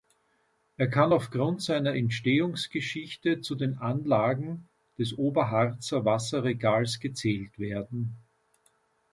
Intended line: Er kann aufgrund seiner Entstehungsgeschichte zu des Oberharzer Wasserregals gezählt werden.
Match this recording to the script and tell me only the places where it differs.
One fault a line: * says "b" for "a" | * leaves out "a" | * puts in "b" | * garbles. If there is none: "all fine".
* puts in "den Anlagen"